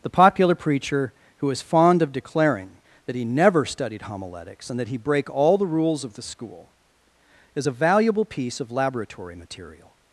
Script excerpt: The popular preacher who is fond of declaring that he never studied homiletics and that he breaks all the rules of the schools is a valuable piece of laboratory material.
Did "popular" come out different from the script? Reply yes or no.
no